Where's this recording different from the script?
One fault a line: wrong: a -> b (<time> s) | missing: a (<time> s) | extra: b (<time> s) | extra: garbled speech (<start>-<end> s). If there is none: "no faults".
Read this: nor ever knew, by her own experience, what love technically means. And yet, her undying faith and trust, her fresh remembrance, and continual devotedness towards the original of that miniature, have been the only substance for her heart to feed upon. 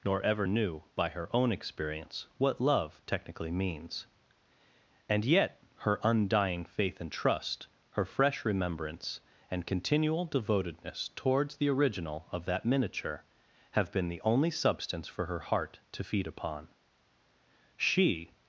extra: She (17.8 s)